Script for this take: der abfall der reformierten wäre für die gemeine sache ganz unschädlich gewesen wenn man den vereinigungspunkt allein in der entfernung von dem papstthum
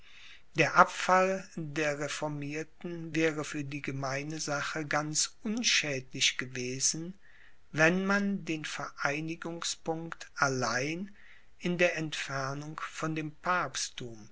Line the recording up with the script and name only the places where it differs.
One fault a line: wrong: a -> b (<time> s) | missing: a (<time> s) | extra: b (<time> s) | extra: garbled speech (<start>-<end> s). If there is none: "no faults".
no faults